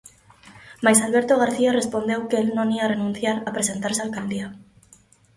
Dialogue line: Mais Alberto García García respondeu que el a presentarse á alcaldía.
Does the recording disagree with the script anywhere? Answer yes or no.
yes